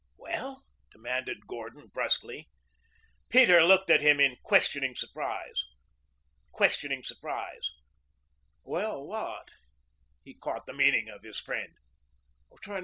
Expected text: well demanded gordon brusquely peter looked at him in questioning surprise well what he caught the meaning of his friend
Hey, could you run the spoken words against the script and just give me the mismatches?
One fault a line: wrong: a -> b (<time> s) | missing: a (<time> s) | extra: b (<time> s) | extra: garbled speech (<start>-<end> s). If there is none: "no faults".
extra: questioning surprise (6.5 s)